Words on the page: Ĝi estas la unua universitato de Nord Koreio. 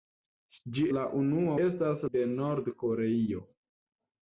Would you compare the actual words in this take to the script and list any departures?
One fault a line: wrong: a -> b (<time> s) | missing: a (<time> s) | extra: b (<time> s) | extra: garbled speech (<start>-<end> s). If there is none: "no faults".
missing: estas (0.8 s)
wrong: universitato -> estas (1.6 s)